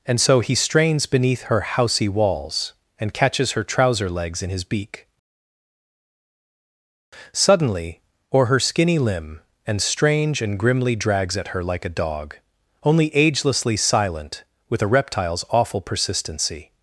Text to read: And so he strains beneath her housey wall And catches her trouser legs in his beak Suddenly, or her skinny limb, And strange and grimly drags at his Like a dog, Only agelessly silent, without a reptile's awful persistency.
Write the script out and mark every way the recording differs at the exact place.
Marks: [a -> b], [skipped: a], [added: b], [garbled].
And so he strains beneath her housey [wall -> walls] And catches her trouser legs in his beak Suddenly, or her skinny limb, And strange and grimly drags at [his -> her] Like a dog, Only agelessly silent, [without -> with] a reptile's awful persistency.